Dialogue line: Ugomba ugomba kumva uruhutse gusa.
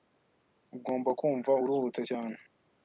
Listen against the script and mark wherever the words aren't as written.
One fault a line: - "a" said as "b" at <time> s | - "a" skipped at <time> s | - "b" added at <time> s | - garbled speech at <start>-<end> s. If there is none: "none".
- "ugomba" skipped at 1.1 s
- "gusa" said as "cyane" at 2.1 s